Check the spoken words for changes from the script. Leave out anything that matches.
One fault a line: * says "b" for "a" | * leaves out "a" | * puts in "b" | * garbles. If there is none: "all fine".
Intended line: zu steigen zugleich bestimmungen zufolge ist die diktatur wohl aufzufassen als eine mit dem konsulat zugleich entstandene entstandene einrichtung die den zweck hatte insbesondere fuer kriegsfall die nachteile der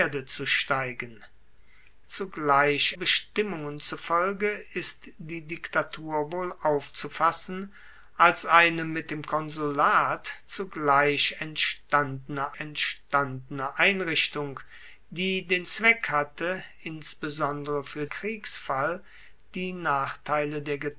all fine